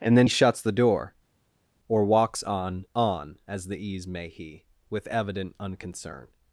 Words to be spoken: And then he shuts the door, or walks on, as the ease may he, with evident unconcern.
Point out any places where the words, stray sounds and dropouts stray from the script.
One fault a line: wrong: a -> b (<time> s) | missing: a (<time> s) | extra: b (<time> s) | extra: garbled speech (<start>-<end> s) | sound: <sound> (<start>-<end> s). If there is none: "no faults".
extra: on (2.9 s)